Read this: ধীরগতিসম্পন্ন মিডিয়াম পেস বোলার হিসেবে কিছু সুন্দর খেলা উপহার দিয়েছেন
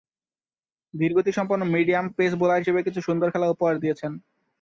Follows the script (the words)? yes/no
yes